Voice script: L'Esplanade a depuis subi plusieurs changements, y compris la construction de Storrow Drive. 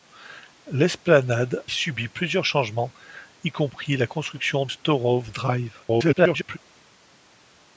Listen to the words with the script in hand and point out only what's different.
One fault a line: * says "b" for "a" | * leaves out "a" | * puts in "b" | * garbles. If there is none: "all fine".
* leaves out "a depuis"
* leaves out "de"
* garbles